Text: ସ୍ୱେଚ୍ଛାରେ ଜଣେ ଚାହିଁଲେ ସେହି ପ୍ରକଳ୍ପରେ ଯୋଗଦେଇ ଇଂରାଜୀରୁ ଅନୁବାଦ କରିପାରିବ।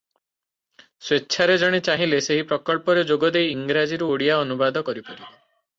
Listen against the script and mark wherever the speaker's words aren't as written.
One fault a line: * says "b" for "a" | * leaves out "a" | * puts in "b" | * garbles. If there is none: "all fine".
* puts in "ଓଡ଼ିଆ"